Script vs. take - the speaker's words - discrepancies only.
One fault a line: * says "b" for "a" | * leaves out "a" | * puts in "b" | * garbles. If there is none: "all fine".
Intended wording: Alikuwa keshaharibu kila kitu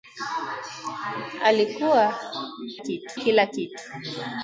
* says "kitu" for "keshaharibu"